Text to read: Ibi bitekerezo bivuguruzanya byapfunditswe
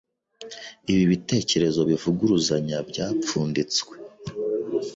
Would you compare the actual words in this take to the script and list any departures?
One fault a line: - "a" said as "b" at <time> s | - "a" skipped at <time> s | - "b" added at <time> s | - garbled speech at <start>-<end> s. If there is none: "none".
none